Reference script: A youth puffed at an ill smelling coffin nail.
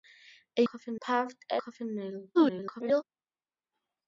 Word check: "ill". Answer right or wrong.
wrong